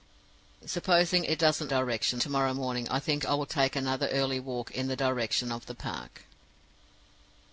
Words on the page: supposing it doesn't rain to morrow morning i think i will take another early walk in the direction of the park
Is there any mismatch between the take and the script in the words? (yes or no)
yes